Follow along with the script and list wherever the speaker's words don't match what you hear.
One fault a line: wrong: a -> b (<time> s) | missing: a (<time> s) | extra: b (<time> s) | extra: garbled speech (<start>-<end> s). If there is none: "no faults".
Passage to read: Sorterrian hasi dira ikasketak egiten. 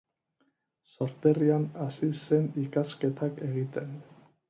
wrong: dira -> zen (2.2 s)